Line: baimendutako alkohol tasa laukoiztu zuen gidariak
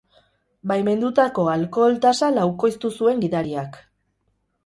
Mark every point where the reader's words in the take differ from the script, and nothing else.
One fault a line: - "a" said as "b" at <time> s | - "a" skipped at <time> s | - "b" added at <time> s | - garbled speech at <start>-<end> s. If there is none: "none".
none